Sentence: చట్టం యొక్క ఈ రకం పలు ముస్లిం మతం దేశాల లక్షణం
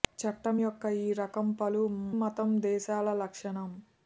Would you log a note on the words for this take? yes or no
yes